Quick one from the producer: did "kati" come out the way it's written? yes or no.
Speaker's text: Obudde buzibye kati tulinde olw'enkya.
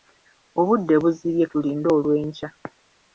no